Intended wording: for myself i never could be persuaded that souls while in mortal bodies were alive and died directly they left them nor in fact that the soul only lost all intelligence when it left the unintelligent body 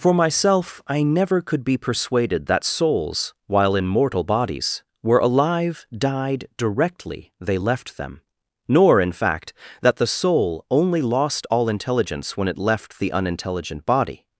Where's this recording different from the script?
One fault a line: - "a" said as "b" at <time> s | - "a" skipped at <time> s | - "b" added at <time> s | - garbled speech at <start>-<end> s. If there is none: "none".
- "and" skipped at 5.8 s